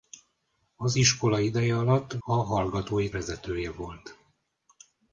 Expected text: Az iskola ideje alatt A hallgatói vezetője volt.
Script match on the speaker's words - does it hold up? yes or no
yes